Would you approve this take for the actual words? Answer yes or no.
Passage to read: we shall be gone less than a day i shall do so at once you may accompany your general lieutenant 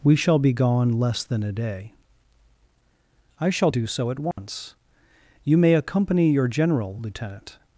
yes